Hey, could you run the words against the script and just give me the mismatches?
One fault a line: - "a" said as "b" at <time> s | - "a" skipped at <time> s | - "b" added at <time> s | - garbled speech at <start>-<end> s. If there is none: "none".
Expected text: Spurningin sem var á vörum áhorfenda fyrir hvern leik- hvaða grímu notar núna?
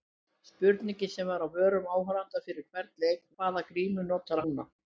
none